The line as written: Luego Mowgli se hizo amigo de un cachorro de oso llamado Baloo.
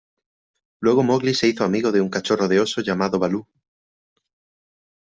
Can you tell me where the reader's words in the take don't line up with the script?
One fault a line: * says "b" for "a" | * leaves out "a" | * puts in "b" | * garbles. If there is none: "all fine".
all fine